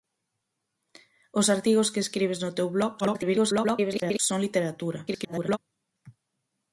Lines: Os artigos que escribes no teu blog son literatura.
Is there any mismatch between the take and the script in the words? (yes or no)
yes